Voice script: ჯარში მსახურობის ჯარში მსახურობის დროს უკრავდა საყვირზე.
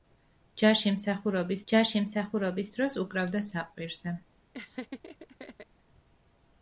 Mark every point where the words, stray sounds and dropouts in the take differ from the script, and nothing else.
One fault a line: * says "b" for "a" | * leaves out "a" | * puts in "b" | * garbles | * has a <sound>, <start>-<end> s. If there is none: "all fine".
* has a laugh, 4.5-5.7 s